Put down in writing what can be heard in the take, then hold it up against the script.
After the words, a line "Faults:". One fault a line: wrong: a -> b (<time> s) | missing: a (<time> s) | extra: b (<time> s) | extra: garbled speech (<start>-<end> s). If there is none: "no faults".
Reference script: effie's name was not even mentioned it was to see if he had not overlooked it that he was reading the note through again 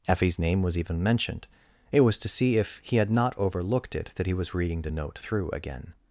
effie's name was even mentioned it was to see if he had not overlooked it that he was reading the note through again
Faults:
missing: not (0.8 s)